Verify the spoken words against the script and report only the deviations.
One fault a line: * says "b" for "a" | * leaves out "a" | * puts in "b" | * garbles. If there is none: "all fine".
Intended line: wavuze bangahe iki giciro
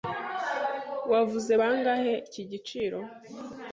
all fine